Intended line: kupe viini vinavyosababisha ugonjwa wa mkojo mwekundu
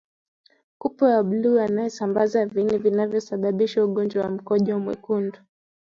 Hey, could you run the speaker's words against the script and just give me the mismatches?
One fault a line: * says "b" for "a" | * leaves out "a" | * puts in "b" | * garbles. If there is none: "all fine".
* puts in "wa bluu anayesambaza"